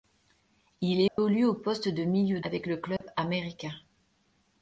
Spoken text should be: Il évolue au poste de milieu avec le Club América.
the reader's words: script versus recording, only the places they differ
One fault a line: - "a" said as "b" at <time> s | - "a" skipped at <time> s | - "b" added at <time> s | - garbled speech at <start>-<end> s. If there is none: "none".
none